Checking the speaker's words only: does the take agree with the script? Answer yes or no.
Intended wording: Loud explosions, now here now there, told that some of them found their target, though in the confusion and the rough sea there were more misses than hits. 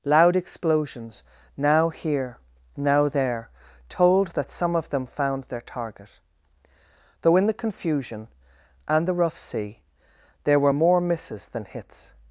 yes